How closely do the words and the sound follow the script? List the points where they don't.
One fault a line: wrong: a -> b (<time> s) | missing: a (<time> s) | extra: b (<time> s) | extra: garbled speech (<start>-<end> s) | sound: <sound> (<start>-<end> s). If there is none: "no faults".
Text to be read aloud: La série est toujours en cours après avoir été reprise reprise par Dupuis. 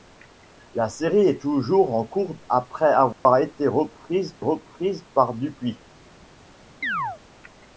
sound: dropout (3.1-3.3 s)
sound: chirp (6.8-7.2 s)